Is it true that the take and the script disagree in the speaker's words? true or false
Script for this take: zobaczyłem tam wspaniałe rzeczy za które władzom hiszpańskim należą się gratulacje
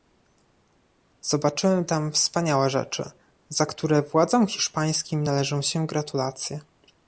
false